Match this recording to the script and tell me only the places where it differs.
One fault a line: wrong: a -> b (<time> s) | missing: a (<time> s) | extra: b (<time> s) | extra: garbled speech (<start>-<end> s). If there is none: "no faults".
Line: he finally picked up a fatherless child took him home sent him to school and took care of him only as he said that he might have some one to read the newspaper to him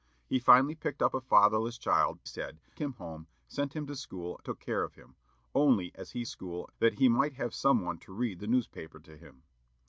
wrong: took -> said (2.2 s)
missing: and (4.4 s)
wrong: said -> school (6.2 s)